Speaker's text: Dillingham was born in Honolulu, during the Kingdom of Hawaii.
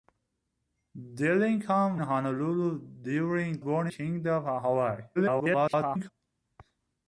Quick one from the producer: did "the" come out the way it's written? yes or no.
no